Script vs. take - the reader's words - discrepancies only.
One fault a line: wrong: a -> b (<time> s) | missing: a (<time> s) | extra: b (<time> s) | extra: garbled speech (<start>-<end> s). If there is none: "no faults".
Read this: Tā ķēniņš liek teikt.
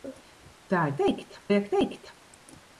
wrong: ķēniņš -> teikt (1.0 s)